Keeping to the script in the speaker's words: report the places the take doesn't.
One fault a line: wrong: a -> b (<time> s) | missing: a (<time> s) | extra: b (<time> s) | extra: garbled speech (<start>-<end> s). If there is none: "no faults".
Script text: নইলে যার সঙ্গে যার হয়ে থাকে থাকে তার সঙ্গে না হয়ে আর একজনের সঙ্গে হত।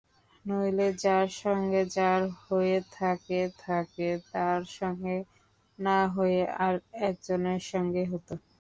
no faults